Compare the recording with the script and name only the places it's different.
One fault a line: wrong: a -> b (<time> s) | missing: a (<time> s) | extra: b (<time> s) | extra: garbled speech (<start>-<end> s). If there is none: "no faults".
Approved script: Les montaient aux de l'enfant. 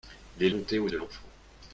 no faults